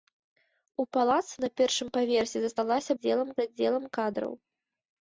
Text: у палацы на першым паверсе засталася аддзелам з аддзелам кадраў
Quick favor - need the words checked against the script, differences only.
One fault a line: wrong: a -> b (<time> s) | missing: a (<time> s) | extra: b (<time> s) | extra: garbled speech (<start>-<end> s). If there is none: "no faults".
no faults